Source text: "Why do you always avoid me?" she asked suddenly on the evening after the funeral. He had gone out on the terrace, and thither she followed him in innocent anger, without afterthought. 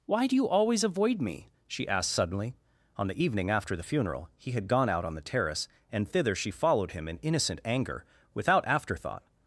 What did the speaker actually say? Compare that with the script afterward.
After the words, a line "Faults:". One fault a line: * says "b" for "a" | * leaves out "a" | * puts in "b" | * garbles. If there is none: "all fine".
"Why do you always avoid me?" she asked suddenly on the evening after the funeral. He had gone out on the terrace, and thither she followed him in innocent anger, without afterthought.
Faults:
all fine